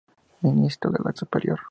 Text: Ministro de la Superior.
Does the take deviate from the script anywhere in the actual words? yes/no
no